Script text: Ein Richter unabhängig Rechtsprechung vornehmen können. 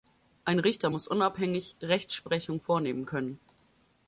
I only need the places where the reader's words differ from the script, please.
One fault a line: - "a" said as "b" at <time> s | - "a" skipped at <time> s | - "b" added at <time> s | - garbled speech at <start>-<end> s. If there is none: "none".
- "muss" added at 0.9 s